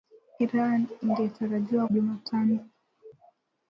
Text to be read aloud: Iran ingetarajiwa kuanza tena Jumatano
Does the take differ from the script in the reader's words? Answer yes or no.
yes